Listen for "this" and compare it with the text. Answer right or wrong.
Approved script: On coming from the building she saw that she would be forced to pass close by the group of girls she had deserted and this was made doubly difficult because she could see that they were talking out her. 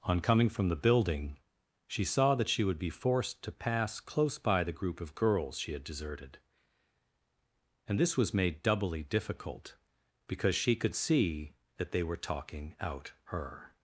right